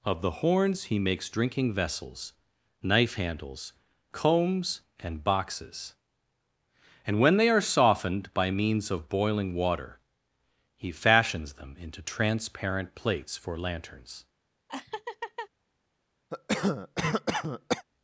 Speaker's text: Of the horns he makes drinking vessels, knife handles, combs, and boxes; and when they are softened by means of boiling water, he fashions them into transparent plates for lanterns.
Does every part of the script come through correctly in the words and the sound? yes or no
no